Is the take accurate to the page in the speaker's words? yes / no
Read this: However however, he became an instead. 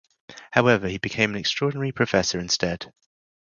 no